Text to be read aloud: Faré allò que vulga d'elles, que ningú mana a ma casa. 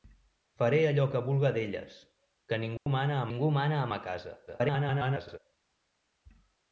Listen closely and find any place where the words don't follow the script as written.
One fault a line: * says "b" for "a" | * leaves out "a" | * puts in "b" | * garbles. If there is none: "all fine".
* puts in "ningú mana a"
* garbles